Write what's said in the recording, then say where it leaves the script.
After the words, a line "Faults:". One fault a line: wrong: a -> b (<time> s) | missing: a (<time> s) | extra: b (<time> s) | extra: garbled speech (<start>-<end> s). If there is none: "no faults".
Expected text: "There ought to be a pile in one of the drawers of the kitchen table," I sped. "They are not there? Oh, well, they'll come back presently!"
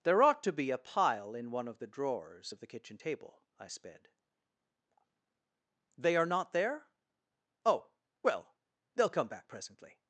"There ought to be a pile in one of the drawers of the kitchen table," I sped. "They are not there? Oh, well, they'll come back presently!"
Faults:
no faults